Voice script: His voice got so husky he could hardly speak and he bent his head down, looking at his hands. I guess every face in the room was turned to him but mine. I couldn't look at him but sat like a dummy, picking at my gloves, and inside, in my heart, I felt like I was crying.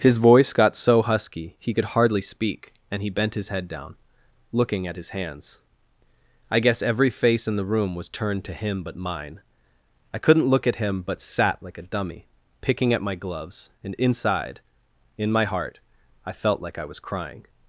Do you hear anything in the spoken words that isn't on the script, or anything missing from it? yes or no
no